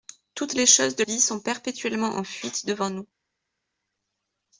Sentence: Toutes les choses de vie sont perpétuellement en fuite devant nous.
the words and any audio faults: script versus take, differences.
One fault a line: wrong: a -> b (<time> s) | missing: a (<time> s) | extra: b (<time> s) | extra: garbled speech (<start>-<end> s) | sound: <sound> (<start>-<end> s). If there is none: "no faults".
no faults